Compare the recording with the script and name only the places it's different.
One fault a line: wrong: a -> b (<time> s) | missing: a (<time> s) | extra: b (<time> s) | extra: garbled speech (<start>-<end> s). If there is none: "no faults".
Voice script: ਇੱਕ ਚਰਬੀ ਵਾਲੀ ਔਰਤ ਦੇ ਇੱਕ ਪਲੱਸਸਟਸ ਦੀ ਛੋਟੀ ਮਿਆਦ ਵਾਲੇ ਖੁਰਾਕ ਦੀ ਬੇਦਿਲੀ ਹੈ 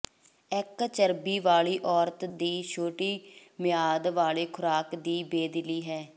missing: ਦੇ ਇੱਕ ਪਲੱਸਸਟਸ (2.2 s)